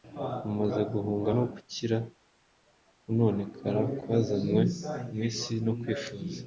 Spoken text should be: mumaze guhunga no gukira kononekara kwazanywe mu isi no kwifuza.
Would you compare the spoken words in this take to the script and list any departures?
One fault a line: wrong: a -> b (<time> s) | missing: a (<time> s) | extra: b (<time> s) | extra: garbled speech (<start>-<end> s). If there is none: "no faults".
no faults